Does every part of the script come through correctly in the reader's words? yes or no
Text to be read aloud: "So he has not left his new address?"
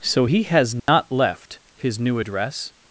yes